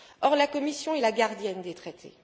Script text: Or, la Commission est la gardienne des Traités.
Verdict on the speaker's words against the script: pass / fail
pass